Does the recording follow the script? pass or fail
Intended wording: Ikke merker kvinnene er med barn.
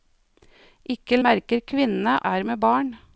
pass